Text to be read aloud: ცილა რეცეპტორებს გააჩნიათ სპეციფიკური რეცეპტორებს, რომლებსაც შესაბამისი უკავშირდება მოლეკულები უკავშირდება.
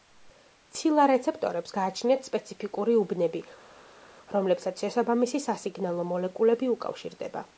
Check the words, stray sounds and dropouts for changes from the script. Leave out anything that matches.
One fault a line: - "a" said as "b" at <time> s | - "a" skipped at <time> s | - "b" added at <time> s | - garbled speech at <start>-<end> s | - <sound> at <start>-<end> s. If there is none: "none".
- "რეცეპტორებს" said as "უბნები" at 3.0 s
- "უკავშირდება" said as "სასიგნალო" at 5.5 s